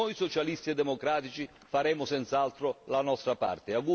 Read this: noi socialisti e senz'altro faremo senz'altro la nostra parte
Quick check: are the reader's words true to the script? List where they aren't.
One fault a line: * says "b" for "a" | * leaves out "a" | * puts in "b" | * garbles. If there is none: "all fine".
* says "democratici" for "senz'altro"